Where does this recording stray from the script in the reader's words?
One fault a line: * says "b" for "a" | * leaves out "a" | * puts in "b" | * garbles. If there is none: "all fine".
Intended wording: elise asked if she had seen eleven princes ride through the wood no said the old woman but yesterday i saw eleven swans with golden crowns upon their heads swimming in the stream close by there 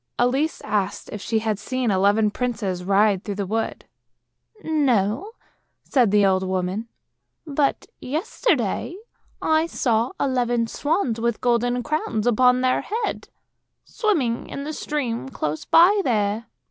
all fine